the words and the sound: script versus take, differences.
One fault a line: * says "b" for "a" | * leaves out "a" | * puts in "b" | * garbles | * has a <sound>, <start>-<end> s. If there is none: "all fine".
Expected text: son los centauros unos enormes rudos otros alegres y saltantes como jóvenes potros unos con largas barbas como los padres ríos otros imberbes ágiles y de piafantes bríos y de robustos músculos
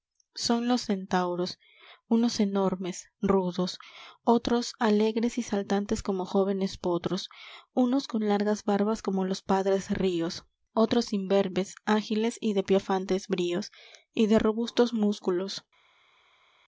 all fine